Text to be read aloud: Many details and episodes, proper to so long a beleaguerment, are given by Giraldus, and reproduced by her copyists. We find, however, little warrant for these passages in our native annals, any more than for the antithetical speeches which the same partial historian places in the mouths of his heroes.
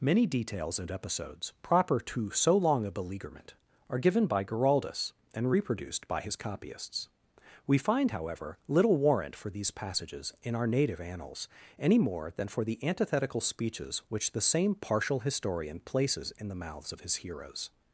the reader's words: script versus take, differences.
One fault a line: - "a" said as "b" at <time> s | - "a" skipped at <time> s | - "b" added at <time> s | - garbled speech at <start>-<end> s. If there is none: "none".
- "her" said as "his" at 6.2 s